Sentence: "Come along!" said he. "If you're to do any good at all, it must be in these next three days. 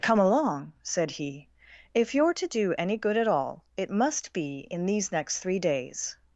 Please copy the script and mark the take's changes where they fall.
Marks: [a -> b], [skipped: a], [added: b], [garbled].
"Come along!" said he. "If you're to do any good at all, it must be in these next three days.